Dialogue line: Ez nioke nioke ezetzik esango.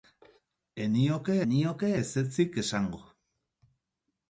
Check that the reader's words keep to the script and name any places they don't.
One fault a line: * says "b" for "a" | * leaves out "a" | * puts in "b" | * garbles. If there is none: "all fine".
all fine